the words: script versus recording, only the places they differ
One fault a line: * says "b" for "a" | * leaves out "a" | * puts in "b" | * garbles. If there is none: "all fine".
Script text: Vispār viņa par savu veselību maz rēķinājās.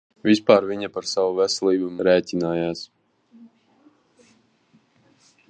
* leaves out "maz"